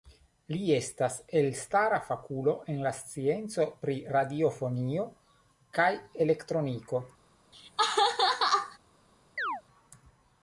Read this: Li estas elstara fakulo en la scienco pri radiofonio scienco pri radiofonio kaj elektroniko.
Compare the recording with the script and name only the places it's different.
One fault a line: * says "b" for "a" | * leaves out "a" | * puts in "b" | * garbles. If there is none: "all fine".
* leaves out "scienco pri radiofonio"